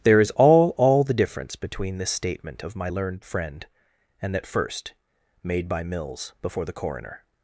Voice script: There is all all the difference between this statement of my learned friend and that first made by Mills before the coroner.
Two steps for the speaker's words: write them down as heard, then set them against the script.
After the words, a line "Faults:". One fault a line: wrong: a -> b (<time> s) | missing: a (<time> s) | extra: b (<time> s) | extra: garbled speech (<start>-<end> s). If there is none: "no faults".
There is all all the difference between this statement of my learned friend and that first made by Mills before the coroner.
Faults:
no faults